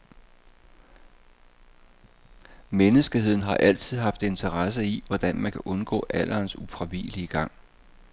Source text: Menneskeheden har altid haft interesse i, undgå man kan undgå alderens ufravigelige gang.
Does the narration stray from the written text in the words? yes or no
yes